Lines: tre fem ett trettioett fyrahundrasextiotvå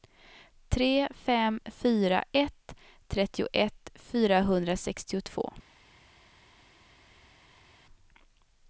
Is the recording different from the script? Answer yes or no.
yes